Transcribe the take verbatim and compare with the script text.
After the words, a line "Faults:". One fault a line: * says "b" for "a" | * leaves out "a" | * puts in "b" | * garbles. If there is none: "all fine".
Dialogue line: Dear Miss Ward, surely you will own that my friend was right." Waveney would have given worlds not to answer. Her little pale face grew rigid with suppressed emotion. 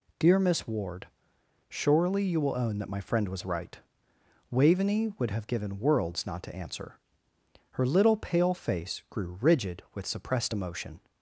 Dear Miss Ward, surely you will own that my friend was right." Waveney would have given worlds not to answer. Her little pale face grew rigid with suppressed emotion.
Faults:
all fine